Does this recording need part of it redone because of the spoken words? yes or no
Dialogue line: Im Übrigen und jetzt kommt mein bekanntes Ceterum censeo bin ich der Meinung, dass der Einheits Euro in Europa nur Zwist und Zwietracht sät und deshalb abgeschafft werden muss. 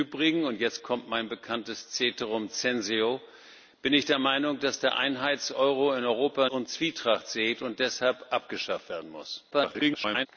yes